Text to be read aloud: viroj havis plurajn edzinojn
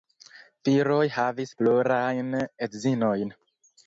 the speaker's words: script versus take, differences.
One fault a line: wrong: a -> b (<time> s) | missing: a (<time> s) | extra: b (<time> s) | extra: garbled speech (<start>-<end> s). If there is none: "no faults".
no faults